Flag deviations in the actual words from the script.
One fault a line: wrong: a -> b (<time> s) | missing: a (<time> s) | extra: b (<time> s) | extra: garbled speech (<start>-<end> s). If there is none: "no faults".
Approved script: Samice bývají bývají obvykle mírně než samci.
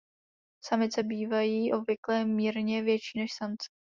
missing: bývají (1.7 s)
extra: větší (2.8 s)